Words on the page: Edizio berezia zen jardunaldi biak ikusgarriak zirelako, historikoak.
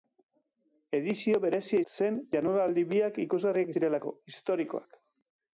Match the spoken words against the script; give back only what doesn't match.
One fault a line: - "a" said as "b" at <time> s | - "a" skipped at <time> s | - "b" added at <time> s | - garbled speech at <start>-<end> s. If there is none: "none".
none